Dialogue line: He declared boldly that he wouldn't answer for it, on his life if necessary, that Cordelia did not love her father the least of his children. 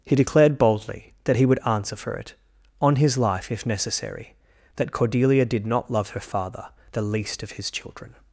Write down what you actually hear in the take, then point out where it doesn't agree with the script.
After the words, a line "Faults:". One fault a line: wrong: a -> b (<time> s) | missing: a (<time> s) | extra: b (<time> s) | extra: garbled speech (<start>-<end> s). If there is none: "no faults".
He declared boldly that he would answer for it, on his life if necessary, that Cordelia did not love her father the least of his children.
Faults:
wrong: wouldn't -> would (1.4 s)